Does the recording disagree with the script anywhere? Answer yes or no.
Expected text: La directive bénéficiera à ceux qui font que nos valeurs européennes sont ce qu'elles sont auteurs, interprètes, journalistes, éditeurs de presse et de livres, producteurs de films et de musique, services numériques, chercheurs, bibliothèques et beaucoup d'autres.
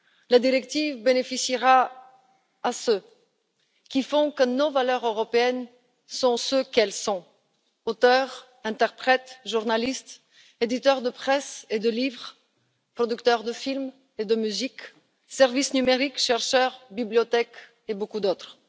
no